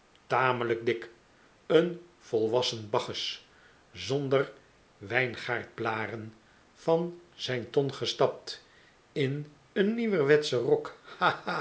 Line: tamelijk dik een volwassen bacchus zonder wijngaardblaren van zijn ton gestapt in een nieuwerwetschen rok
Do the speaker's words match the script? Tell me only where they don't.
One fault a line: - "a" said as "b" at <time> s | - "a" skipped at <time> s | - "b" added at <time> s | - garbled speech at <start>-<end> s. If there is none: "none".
none